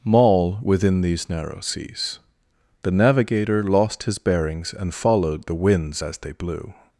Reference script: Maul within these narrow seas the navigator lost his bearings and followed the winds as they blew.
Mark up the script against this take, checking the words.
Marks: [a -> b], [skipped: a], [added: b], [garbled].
Maul within these narrow seas the navigator lost his bearings and followed the winds as they blew.